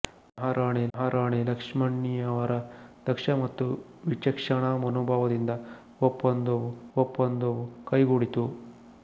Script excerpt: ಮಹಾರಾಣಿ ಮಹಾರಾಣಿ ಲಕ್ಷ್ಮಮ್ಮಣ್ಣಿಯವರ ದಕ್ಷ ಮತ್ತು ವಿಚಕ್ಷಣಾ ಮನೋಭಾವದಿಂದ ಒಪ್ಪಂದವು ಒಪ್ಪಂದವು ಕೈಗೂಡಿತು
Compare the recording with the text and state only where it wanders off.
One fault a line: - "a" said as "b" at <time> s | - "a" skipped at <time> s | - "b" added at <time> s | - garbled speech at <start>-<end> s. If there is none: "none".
none